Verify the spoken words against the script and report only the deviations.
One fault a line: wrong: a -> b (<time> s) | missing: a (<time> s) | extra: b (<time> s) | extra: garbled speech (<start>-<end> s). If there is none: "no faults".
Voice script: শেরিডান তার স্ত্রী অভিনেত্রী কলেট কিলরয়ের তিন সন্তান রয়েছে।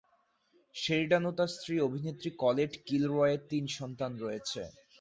extra: ও (1.2 s)